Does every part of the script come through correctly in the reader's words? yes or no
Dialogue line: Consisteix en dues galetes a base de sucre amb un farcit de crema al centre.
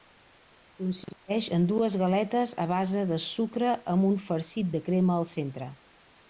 yes